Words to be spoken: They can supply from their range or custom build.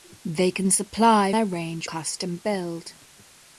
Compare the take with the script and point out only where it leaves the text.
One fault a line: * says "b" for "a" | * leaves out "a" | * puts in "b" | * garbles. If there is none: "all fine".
* leaves out "from"
* leaves out "or"